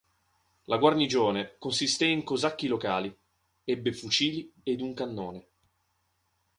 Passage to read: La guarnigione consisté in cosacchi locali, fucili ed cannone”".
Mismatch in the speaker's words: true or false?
true